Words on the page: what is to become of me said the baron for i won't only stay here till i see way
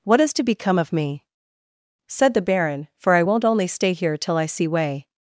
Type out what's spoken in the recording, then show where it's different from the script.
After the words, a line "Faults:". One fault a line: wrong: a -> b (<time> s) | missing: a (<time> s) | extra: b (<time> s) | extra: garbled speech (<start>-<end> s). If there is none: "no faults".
what is to become of me said the baron for i won't only stay here till i see way
Faults:
no faults